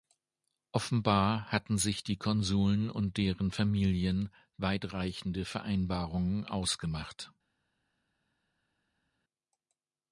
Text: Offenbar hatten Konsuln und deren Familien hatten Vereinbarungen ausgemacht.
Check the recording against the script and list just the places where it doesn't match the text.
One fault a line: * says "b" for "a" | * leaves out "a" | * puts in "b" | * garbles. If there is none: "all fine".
* puts in "sich die"
* says "weitreichende" for "hatten"